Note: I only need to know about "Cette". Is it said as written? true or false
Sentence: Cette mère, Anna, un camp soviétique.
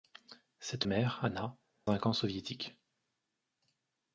true